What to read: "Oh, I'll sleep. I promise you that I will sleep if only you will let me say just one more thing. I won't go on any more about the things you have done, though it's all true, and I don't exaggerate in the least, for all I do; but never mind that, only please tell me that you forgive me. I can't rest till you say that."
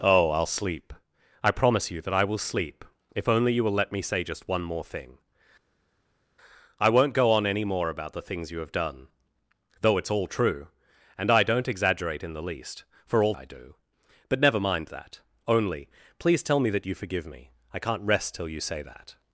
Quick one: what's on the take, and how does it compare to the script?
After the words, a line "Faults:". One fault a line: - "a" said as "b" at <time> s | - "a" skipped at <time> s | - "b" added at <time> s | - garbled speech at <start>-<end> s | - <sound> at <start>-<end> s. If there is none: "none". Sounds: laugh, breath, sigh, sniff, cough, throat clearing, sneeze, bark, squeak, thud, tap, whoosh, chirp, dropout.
"Oh, I'll sleep. I promise you that I will sleep if only you will let me say just one more thing. I won't go on any more about the things you have done, though it's all true, and I don't exaggerate in the least, for all I do; but never mind that, only please tell me that you forgive me. I can't rest till you say that."
Faults:
none